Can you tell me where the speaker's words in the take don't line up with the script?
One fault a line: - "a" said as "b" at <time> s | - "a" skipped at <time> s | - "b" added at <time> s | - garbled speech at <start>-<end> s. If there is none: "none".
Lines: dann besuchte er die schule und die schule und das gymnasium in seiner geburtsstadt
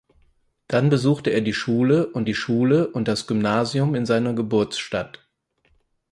none